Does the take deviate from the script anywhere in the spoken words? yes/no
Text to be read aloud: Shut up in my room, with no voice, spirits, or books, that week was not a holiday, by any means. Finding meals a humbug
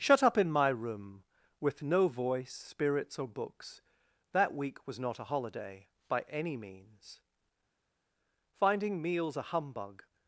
no